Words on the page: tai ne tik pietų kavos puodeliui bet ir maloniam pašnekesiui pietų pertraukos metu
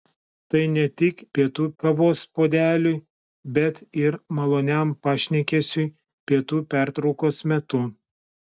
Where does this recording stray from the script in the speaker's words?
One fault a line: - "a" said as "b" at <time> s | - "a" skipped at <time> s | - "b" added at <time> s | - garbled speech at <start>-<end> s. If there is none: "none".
none